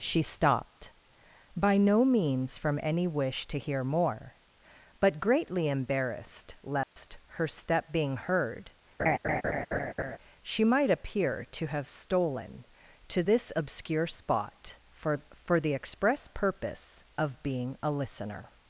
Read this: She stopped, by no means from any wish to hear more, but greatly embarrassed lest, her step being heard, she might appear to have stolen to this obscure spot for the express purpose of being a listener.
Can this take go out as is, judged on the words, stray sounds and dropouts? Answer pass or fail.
fail